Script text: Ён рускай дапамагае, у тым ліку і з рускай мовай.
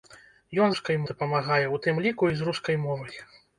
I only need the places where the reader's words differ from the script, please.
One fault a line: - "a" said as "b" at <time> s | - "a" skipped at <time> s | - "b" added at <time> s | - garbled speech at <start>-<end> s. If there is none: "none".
none